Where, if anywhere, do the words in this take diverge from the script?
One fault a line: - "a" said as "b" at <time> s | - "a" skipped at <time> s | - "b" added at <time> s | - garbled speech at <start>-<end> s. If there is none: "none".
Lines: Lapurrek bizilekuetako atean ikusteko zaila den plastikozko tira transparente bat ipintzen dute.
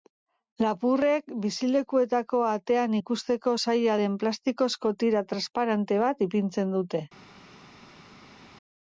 none